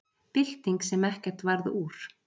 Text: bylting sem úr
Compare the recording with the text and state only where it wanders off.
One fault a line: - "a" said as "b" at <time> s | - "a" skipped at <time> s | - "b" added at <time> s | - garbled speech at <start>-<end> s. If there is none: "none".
- "ekkert varð" added at 1.1 s